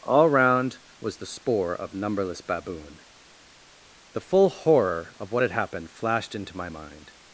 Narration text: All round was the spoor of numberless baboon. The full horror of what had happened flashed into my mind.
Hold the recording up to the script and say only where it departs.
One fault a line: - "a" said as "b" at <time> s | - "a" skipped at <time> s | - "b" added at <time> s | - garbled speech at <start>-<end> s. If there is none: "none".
none